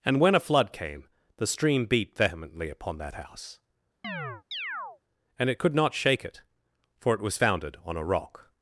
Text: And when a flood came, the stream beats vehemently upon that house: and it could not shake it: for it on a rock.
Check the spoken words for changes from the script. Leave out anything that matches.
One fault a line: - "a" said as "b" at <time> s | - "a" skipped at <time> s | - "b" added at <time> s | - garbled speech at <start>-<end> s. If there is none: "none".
- "beats" said as "beat" at 1.9 s
- "was founded" added at 7.2 s